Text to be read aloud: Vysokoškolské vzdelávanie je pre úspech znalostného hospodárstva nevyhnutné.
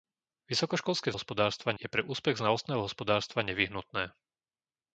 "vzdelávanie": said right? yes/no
no